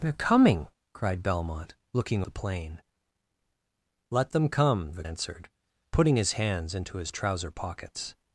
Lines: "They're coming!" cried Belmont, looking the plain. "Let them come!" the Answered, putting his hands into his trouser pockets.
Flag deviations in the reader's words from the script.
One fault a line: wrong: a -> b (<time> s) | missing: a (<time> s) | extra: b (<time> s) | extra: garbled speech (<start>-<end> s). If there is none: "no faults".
no faults